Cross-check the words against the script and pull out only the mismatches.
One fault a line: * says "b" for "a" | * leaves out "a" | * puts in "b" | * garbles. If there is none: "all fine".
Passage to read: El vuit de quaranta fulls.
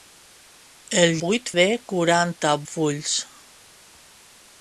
all fine